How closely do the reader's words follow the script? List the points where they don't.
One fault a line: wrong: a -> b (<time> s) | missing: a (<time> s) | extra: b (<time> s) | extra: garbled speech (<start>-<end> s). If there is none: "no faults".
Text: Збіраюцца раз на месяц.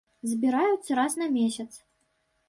no faults